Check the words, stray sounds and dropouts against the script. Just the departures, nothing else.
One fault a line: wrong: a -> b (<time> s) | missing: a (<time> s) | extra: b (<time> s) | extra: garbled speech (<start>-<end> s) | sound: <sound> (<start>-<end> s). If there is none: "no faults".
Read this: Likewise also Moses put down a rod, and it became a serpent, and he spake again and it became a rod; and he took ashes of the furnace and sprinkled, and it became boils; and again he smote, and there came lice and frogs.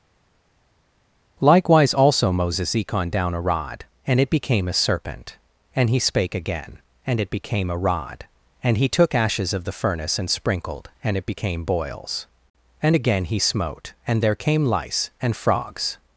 wrong: put -> econ (2.7 s)